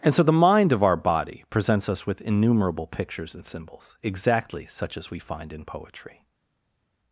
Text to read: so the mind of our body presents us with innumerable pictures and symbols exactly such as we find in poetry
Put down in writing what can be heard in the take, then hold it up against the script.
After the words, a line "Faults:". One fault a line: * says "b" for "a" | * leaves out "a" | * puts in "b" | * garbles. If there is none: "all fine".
and so the mind of our body presents us with innumerable pictures and symbols exactly such as we find in poetry
Faults:
* puts in "and"